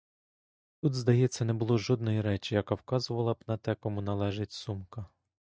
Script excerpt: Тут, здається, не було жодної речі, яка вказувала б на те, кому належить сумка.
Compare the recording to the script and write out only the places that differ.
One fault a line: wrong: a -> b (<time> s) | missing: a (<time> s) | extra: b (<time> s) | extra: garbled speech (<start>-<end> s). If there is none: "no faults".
no faults